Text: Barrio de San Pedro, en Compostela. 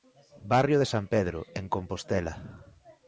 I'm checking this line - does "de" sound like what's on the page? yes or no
yes